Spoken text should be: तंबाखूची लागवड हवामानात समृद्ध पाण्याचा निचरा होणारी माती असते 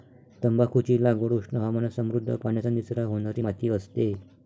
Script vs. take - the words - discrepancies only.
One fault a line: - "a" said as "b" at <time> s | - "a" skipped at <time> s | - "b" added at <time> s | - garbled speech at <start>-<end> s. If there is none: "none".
- "उष्ण" added at 1.3 s